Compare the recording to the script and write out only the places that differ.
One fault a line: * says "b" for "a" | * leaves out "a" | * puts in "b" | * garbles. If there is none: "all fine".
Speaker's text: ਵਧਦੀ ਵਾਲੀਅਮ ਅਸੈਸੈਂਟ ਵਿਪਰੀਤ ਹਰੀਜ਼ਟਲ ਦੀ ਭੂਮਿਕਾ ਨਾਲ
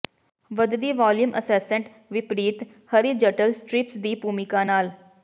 * puts in "ਸਟ੍ਰਿਪਸ"